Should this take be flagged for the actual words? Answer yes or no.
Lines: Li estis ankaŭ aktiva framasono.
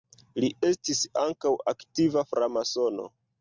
no